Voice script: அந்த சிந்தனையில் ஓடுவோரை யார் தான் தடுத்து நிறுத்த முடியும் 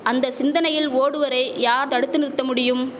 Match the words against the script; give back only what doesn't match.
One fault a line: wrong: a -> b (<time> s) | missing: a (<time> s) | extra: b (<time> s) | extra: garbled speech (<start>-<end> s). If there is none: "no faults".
missing: தான் (1.9 s)